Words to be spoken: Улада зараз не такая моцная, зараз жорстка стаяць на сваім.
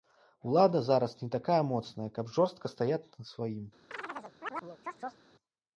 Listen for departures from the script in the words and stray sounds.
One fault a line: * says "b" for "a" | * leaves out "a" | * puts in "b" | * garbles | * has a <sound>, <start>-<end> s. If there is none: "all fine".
* says "каб" for "зараз"
* has a chirp, 3.9-5.3 s